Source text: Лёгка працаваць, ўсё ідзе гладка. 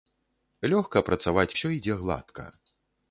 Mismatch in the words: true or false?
false